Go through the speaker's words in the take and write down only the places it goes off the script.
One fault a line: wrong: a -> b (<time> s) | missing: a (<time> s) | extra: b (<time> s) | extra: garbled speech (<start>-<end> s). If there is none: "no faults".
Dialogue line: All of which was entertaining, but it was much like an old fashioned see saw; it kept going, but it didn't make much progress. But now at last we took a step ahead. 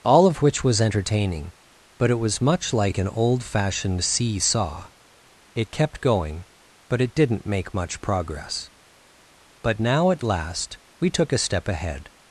no faults